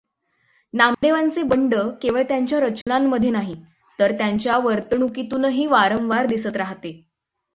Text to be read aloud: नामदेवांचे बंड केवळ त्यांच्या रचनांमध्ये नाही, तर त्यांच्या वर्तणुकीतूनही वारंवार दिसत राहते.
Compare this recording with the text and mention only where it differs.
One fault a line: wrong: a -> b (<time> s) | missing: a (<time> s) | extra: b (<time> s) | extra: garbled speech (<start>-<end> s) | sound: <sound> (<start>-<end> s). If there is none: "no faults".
sound: dropout (0.9-1.0 s)
sound: dropout (2.8-2.9 s)